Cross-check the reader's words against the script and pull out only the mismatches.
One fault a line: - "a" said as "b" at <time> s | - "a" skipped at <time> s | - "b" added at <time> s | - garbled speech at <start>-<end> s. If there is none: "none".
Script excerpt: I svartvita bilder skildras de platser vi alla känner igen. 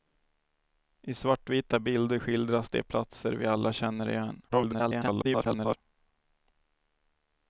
- garbled speech at 4.5-5.8 s